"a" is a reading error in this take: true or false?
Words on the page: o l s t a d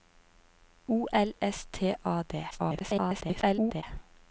false